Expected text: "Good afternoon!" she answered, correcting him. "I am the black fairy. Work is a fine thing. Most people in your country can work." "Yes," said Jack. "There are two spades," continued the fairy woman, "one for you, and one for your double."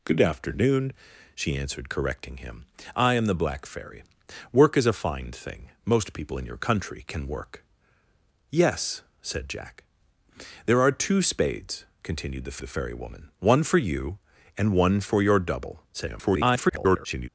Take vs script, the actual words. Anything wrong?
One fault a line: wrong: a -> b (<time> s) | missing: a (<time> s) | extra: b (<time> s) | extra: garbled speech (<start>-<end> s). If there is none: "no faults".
extra: the (12.6 s)
extra: garbled speech (15.9-17.3 s)